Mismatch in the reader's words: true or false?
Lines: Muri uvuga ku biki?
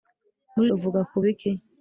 false